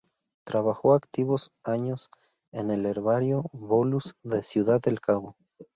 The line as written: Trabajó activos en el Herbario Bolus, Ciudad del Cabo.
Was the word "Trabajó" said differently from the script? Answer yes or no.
no